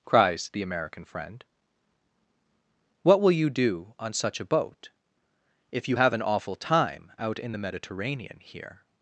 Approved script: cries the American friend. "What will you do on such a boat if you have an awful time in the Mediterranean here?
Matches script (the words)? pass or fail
fail